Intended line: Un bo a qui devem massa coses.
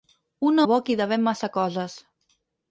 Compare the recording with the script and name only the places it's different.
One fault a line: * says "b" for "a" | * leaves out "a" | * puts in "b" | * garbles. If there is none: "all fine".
all fine